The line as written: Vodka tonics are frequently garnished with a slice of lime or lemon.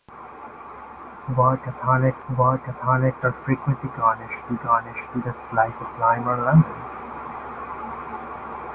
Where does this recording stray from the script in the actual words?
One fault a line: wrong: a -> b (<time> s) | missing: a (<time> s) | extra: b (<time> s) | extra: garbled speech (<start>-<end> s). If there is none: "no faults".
extra: vodka tonics (2.3 s)
extra: garnished with (4.6 s)